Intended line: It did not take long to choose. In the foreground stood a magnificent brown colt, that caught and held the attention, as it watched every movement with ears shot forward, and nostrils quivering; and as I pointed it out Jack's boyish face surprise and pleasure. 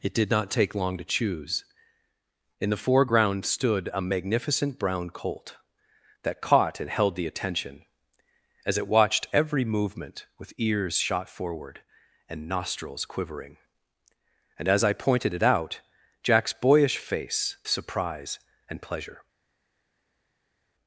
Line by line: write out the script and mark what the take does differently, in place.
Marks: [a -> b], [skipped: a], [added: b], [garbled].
It did not take long to choose. In the foreground stood a magnificent brown colt, that caught and held the attention, as it watched every movement with ears shot forward, and nostrils quivering; and as I pointed it out Jack's boyish face surprise and pleasure.